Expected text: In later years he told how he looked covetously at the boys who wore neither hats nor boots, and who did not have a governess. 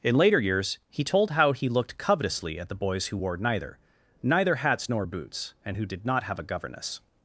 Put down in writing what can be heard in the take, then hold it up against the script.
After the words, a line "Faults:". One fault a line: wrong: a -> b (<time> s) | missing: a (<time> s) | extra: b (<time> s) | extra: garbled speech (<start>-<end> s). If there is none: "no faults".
In later years he told how he looked covetously at the boys who wore neither neither hats nor boots, and who did not have a governess.
Faults:
extra: neither (4.2 s)